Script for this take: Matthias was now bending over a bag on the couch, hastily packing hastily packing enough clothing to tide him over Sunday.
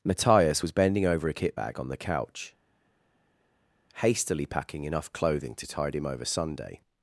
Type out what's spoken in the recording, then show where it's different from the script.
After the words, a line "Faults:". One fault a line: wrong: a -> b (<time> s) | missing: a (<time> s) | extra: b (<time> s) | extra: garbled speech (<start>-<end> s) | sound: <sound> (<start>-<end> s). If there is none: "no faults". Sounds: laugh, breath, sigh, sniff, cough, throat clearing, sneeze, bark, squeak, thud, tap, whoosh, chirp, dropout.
Matthias was bending over a kit bag on the couch, hastily packing enough clothing to tide him over Sunday.
Faults:
missing: now (0.7 s)
extra: kit (1.3 s)
missing: hastily packing (4.8 s)